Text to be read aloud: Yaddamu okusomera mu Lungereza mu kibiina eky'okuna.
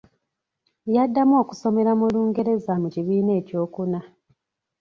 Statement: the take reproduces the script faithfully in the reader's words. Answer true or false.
true